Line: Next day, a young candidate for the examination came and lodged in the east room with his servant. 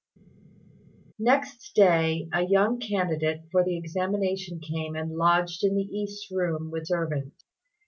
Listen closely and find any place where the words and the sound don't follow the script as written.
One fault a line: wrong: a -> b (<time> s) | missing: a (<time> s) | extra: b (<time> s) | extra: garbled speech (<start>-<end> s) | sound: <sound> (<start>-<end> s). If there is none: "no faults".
missing: his (6.9 s)